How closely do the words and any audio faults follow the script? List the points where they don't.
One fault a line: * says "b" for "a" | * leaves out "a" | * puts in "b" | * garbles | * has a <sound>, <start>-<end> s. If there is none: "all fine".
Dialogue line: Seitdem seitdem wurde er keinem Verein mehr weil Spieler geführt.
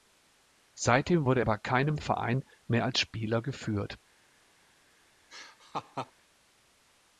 * leaves out "seitdem"
* puts in "bei"
* says "als" for "weil"
* has a laugh, 5.3-6.1 s